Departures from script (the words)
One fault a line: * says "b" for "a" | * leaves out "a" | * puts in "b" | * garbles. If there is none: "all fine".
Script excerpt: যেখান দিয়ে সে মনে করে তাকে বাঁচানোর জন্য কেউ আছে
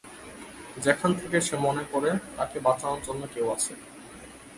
* says "থেকে" for "দিয়ে"